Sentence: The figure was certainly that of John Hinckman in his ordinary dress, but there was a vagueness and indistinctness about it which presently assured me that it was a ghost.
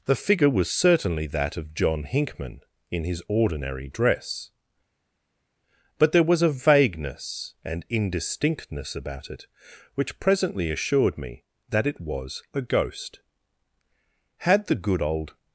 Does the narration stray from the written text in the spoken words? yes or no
yes